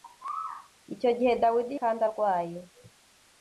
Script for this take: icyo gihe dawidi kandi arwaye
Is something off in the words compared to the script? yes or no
no